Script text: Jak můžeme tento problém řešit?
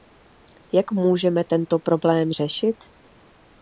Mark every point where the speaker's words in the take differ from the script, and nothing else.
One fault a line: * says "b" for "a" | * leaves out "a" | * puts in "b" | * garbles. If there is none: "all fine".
all fine